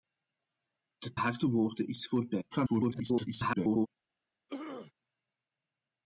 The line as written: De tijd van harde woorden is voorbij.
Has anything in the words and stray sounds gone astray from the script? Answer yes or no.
yes